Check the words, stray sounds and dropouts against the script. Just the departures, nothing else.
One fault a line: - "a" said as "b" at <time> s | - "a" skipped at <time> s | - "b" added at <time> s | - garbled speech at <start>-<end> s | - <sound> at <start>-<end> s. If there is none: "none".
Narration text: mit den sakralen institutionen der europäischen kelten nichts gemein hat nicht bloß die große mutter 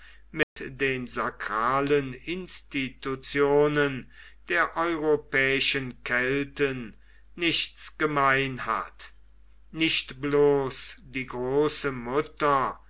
- dropout at 0.4-0.6 s